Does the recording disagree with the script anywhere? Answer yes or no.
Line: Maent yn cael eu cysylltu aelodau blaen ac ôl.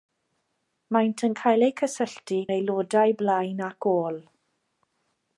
no